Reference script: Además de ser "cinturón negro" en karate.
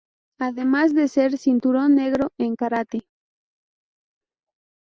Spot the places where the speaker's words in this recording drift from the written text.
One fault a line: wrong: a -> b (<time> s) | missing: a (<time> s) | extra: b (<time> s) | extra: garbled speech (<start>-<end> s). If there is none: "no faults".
no faults